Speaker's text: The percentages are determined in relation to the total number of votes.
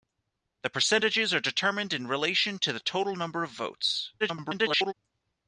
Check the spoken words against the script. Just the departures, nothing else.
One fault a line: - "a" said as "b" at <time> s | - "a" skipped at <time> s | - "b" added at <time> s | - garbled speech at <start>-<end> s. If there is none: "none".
- garbled speech at 4.2-4.9 s